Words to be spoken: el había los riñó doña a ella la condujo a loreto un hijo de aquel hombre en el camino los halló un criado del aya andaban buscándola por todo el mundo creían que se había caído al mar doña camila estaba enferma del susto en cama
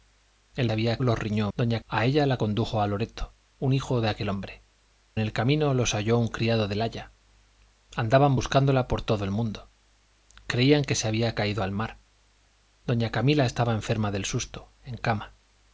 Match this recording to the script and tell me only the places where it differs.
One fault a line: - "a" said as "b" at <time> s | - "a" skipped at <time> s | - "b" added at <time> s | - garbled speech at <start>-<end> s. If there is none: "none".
none